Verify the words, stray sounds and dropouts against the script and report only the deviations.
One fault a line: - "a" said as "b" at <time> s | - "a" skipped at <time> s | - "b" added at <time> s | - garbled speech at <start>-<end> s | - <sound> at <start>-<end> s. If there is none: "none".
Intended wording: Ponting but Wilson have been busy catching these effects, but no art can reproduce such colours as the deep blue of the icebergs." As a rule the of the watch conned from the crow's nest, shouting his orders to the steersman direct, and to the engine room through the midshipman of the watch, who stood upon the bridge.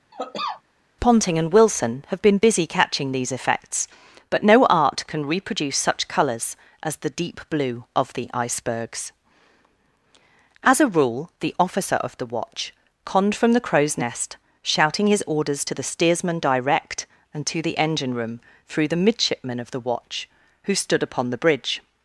- cough at 0.1-0.6 s
- "but" said as "and" at 1.4 s
- "officer" added at 11.6 s